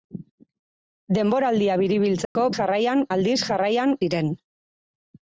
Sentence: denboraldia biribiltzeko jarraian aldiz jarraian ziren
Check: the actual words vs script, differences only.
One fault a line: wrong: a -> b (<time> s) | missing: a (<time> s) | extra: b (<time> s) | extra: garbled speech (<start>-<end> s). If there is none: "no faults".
no faults